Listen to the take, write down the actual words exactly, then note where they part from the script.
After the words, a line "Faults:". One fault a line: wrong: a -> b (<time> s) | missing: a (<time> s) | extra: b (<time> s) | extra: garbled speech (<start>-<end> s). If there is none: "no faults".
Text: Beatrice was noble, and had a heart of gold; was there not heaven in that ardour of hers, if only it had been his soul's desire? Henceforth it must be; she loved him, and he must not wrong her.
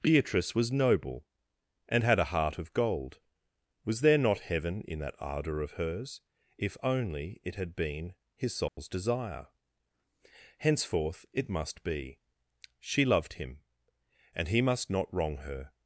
Beatrice was noble, and had a heart of gold; was there not heaven in that ardour of hers, if only it had been his soul's desire? Henceforth it must be; she loved him, and he must not wrong her.
Faults:
no faults